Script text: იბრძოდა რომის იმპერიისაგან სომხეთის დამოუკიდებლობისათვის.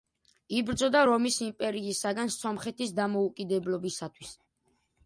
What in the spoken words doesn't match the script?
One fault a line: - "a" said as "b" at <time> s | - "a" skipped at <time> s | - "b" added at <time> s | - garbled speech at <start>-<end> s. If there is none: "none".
none